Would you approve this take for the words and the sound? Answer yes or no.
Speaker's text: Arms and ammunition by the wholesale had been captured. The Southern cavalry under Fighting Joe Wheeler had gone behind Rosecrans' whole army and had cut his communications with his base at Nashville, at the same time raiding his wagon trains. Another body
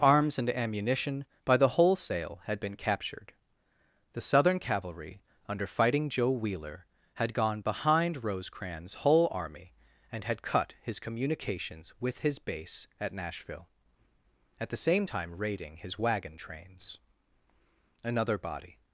yes